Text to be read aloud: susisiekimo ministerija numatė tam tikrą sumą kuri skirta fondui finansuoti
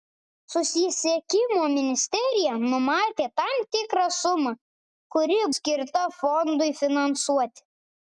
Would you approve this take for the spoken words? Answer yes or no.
yes